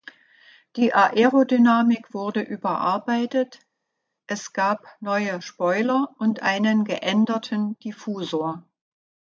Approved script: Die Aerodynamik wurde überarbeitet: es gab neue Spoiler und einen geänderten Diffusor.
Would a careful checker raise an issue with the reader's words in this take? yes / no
no